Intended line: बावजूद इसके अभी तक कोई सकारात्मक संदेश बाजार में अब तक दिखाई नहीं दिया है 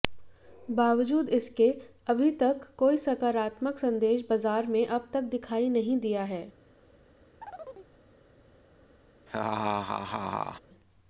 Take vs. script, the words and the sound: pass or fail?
fail